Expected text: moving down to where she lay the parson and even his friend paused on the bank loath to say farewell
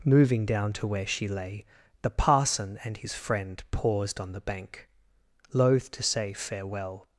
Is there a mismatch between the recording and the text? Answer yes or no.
yes